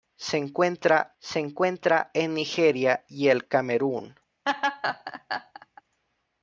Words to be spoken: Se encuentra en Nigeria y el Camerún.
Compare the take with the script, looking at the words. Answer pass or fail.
fail